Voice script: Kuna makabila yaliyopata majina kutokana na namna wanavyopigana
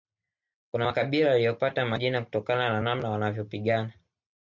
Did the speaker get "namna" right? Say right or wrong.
right